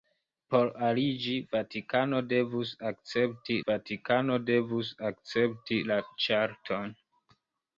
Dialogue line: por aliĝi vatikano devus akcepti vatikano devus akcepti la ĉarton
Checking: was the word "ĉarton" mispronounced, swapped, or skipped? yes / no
no